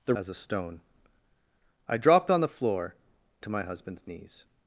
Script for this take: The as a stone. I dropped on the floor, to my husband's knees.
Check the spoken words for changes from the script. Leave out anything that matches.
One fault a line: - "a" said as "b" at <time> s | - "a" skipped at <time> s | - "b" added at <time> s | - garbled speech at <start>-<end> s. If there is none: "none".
none